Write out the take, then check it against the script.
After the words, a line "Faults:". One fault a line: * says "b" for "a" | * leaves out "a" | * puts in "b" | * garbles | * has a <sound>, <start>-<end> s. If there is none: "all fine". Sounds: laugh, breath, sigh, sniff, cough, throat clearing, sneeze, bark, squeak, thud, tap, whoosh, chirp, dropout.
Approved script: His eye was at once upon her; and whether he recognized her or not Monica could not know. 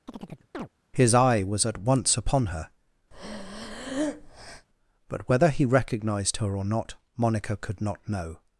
His eye was at once upon her; but whether he recognized her or not Monica could not know.
Faults:
* has a chirp, 0.1-0.7 s
* has a breath, 3.1-4.7 s
* says "but" for "and"